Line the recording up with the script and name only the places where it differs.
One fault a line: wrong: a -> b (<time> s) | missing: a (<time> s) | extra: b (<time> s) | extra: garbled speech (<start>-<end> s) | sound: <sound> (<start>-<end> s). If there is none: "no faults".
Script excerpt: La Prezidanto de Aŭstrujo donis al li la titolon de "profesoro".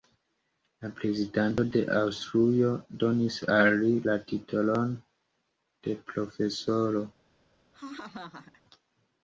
sound: laugh (7.7-8.6 s)